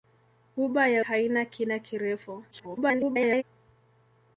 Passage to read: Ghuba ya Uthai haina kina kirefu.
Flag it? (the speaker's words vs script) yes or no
yes